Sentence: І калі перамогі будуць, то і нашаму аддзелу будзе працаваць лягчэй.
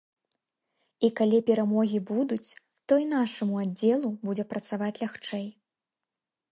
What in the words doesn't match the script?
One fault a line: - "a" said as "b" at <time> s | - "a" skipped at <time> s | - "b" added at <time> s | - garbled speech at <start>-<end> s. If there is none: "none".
none